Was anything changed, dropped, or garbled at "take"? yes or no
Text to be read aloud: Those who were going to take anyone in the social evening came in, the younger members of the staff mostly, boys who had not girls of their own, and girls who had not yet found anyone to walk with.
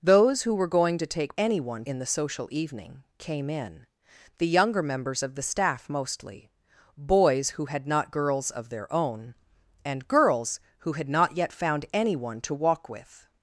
no